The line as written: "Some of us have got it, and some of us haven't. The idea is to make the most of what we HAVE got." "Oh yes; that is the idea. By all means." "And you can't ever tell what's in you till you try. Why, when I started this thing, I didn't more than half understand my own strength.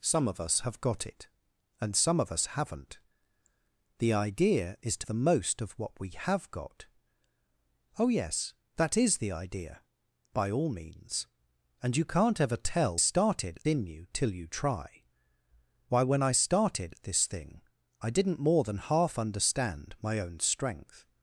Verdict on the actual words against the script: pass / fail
fail